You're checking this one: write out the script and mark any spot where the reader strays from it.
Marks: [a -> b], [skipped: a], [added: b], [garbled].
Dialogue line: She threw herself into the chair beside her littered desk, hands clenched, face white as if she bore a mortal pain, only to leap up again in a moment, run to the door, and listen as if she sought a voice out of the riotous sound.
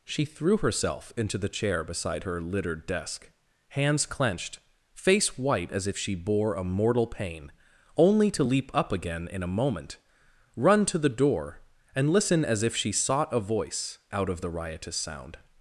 She threw herself into the chair beside her littered desk, hands clenched, face white as if she bore a mortal pain, only to leap up again in a moment, run to the door, and listen as if she sought a voice out of the riotous sound.